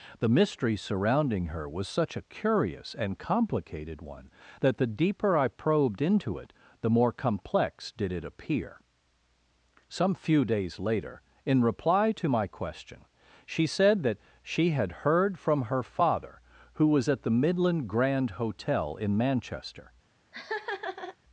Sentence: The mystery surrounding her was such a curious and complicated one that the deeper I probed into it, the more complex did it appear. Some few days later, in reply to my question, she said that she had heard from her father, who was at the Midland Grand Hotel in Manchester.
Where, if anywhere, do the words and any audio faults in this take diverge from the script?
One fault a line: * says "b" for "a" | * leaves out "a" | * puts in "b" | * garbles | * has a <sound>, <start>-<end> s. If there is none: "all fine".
* has a laugh, 20.3-21.2 s